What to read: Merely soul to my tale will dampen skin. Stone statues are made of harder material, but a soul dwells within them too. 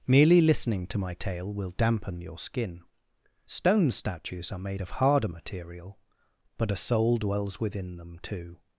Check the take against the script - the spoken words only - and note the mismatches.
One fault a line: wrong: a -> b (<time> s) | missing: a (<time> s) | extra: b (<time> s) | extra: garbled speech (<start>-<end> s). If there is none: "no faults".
wrong: soul -> listening (0.4 s)
extra: your (2.2 s)